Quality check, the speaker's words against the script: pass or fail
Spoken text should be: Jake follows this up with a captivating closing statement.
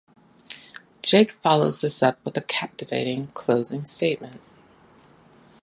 pass